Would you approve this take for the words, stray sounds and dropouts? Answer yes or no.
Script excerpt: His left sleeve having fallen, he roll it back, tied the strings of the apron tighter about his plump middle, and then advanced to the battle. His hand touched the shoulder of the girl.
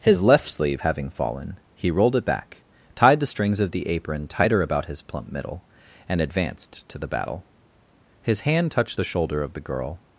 no